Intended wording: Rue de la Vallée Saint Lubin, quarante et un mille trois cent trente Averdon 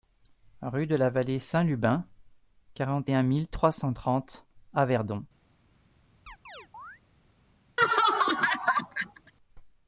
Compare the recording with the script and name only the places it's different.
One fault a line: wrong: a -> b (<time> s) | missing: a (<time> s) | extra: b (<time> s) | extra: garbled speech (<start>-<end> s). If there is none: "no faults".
no faults